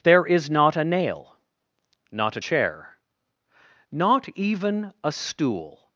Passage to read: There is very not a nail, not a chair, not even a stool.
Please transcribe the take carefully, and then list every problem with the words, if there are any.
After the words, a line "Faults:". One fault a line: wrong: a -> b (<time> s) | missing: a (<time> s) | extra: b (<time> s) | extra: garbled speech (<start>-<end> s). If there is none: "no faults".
There is not a nail, not a chair, not even a stool.
Faults:
missing: very (0.5 s)